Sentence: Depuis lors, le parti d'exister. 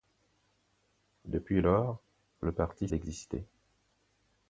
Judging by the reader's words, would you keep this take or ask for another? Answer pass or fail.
pass